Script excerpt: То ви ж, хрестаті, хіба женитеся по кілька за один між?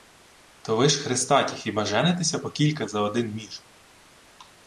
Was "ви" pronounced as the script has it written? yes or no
yes